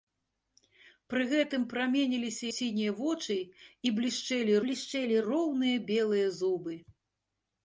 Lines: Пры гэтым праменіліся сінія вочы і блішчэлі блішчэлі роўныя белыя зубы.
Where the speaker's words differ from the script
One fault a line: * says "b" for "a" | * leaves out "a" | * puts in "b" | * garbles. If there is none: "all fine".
all fine